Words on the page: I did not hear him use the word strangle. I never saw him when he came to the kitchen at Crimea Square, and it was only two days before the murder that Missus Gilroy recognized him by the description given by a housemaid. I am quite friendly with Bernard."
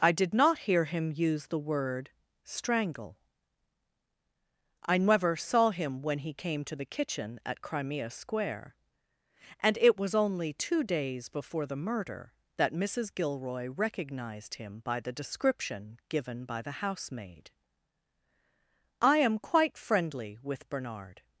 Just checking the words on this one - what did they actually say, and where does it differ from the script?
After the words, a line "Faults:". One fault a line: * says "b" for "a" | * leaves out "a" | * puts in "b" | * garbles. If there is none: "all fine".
I did not hear him use the word strangle. I never saw him when he came to the kitchen at Crimea Square, and it was only two days before the murder that Missus Gilroy recognized him by the description given by the housemaid. I am quite friendly with Bernard."
Faults:
* says "the" for "a"